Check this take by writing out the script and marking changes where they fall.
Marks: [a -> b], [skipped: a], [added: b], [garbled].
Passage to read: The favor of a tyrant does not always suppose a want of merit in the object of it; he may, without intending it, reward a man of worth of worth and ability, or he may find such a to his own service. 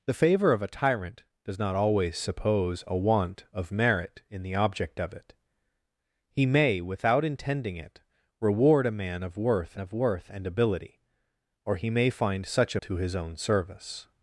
The favor of a tyrant does not always suppose a want of merit in the object of it; he may, without intending it, reward a man of worth of worth and ability, or he may find such a to his own service.